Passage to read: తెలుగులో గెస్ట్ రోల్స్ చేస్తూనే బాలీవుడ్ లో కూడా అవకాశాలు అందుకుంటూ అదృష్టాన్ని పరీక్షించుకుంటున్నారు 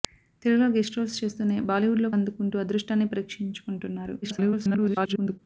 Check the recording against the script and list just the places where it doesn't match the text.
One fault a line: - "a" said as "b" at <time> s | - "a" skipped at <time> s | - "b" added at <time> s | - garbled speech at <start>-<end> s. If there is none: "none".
- "కూడా అవకాశాలు" skipped at 2.1 s
- garbled speech at 4.2-5.4 s